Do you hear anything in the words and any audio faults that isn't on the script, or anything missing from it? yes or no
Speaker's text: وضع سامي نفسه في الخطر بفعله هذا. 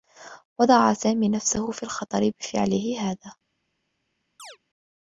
yes